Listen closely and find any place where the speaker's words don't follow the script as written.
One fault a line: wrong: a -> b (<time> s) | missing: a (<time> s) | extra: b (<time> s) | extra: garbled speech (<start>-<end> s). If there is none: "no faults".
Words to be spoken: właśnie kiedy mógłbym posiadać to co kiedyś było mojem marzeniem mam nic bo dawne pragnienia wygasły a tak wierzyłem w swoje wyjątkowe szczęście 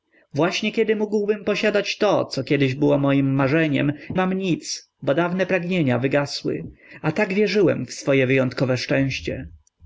no faults